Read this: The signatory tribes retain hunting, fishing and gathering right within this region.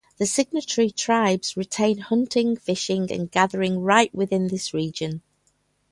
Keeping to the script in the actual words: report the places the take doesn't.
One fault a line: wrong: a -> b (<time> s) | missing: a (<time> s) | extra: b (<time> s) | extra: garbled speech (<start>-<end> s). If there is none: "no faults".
no faults